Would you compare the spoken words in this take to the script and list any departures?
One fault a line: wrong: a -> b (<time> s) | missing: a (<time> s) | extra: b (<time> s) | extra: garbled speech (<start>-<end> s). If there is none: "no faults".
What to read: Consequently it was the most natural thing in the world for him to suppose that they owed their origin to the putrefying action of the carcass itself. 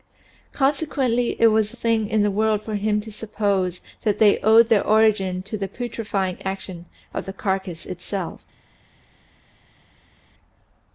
missing: most natural (1.8 s)